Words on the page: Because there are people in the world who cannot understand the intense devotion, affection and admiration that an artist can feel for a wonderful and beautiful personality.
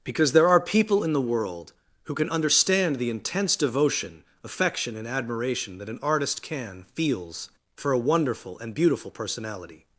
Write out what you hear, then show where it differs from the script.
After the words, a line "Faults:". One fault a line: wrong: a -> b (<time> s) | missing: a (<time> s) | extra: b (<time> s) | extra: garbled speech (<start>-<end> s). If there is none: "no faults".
Because there are people in the world who can understand the intense devotion, affection and admiration that an artist can feels for a wonderful and beautiful personality.
Faults:
wrong: cannot -> can (2.1 s)
wrong: feel -> feels (7.0 s)